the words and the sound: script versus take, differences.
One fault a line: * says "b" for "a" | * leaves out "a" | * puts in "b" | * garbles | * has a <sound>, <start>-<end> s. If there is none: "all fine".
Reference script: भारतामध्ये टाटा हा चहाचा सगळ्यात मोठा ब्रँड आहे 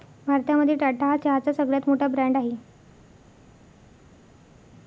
all fine